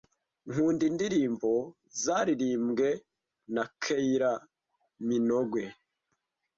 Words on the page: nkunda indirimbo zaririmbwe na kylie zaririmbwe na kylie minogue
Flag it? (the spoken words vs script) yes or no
yes